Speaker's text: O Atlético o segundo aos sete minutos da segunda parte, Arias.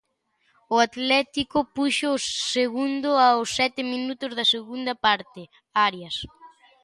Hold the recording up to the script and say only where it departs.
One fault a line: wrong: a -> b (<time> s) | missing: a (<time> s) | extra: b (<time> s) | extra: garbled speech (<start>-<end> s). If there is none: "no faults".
extra: puxo (1.8 s)